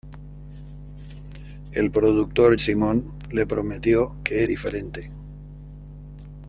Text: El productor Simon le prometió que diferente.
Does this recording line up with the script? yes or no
yes